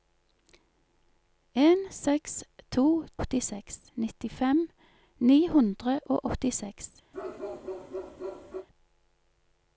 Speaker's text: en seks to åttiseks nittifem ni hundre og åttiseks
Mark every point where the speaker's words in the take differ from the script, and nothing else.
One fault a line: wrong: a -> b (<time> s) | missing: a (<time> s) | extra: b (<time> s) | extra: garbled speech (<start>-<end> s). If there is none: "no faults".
no faults